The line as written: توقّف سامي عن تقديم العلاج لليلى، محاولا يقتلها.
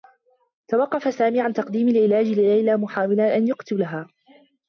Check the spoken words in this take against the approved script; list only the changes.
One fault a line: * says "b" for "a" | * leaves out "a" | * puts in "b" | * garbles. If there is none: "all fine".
* puts in "أن"